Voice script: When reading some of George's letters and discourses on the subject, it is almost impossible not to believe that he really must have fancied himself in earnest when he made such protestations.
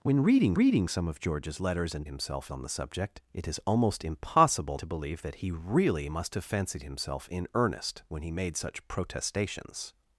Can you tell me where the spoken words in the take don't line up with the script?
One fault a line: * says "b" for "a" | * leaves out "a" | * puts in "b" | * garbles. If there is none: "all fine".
* puts in "reading"
* says "himself" for "discourses"
* leaves out "not"